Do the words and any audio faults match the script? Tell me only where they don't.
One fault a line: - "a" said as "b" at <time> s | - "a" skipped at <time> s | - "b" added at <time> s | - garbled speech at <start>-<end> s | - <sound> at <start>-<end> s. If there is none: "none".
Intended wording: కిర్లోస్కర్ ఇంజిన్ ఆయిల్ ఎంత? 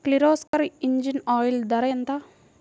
- dropout at 0.5-0.5 s
- "ధర" added at 1.6 s